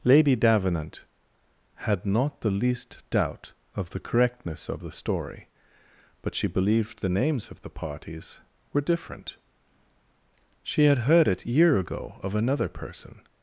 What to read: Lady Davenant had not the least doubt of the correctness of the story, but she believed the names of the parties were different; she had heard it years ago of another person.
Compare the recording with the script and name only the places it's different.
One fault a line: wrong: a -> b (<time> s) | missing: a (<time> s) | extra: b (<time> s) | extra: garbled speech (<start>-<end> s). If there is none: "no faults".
wrong: years -> year (11.4 s)